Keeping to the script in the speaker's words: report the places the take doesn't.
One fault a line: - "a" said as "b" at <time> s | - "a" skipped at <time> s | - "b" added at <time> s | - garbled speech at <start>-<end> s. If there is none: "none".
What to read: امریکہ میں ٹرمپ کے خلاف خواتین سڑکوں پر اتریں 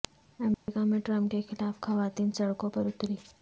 none